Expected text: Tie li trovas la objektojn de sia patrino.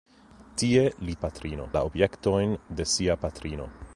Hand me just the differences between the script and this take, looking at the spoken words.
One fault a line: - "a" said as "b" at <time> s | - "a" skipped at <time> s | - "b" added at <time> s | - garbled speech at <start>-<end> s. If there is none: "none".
- "trovas" said as "patrino" at 1.3 s